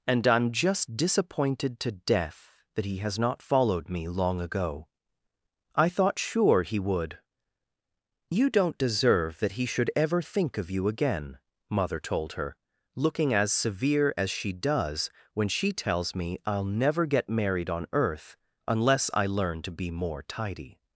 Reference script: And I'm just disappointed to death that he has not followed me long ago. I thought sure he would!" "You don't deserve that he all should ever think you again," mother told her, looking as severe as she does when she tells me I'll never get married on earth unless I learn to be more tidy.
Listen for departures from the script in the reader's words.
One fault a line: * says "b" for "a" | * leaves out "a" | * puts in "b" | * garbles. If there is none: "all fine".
* leaves out "all"
* puts in "of"